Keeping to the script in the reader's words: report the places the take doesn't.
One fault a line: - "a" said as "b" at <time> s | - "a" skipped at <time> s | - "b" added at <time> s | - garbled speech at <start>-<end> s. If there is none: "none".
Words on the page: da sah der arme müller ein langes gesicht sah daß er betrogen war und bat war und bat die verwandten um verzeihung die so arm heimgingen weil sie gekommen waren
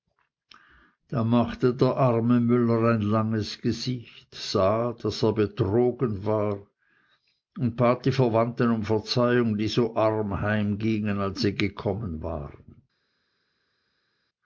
- "sah" said as "machte" at 1.2 s
- "war und bat" skipped at 8.0 s
- "weil" said as "als" at 11.2 s